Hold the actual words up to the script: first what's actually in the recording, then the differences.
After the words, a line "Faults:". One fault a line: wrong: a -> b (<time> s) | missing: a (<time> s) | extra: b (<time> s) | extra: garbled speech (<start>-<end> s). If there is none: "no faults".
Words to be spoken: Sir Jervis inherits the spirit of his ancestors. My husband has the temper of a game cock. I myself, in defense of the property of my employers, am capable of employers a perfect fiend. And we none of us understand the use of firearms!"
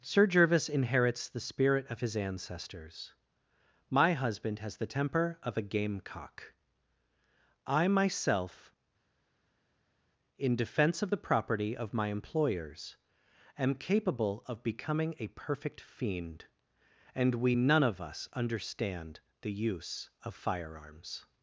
Sir Jervis inherits the spirit of his ancestors. My husband has the temper of a game cock. I myself, in defense of the property of my employers, am capable of becoming a perfect fiend. And we none of us understand the use of firearms!"
Faults:
wrong: employers -> becoming (14.6 s)